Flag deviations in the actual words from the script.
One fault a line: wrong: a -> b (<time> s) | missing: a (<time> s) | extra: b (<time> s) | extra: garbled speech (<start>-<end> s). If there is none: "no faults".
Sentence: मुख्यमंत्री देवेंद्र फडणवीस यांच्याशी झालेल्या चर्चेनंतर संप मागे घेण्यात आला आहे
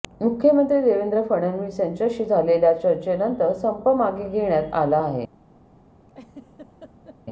no faults